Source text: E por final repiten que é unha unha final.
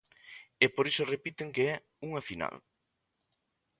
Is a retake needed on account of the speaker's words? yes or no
yes